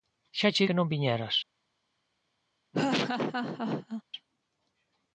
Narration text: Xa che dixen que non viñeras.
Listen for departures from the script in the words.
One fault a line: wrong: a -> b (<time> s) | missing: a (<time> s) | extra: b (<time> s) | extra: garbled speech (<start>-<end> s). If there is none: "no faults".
missing: dixen (0.7 s)